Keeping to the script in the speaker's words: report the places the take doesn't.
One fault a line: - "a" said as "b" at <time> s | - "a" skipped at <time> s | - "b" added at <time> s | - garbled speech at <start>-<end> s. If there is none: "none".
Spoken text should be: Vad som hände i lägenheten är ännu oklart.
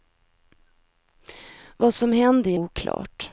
- "lägenheten är ännu" skipped at 2.6 s